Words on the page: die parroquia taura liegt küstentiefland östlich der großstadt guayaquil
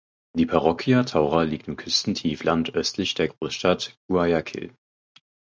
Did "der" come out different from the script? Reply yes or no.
no